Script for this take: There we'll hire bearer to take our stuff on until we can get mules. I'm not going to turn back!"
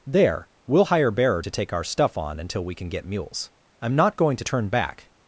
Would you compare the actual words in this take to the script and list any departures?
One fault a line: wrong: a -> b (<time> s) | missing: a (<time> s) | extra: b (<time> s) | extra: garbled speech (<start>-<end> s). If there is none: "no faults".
no faults